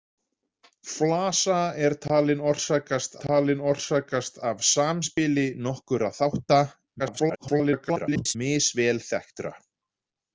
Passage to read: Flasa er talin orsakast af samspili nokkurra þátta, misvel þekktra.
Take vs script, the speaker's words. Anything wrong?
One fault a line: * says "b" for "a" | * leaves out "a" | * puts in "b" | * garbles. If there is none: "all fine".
* puts in "talin orsakast"
* garbles